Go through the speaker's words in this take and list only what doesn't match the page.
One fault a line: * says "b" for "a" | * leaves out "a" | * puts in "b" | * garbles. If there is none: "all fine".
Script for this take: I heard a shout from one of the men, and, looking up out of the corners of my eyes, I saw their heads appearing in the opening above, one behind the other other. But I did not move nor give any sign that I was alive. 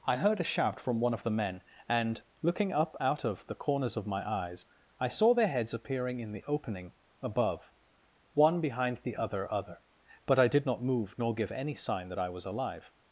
all fine